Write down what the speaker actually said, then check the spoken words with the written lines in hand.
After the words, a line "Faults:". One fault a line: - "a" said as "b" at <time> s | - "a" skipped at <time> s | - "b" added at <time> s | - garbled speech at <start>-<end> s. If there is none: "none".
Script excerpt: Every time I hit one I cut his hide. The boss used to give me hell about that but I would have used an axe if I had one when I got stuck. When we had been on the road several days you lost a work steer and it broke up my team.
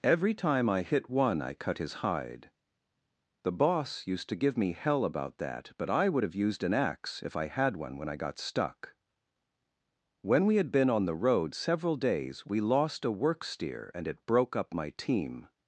Every time I hit one I cut his hide. The boss used to give me hell about that but I would have used an axe if I had one when I got stuck. When we had been on the road several days we lost a work steer and it broke up my team.
Faults:
- "you" said as "we" at 12.4 s